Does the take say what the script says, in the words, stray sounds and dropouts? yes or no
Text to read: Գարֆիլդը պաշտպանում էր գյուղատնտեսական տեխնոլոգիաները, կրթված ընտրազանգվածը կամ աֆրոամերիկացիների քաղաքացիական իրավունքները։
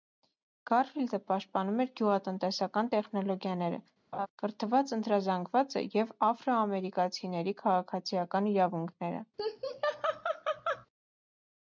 no